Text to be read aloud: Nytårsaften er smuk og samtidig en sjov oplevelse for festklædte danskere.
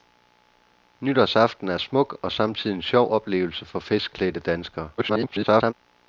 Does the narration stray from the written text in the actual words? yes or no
yes